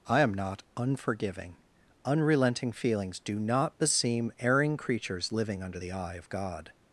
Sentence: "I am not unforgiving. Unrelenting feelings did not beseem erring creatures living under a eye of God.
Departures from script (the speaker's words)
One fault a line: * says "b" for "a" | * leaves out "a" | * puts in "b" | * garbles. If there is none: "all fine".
* says "do" for "did"
* says "the" for "a"